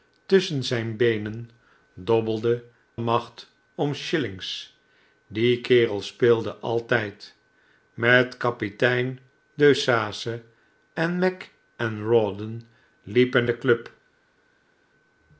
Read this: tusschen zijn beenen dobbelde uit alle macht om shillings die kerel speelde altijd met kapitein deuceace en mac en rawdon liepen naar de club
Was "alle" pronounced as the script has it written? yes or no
no